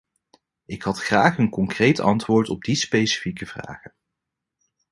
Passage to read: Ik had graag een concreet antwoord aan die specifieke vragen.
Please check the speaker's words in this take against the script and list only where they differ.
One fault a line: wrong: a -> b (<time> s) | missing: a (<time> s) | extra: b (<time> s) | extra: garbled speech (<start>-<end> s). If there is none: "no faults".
wrong: aan -> op (2.5 s)